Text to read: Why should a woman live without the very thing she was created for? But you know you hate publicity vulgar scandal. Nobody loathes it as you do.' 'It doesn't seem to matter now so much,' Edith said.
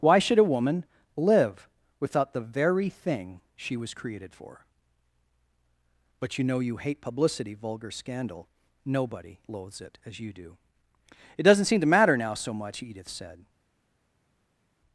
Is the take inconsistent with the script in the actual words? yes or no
no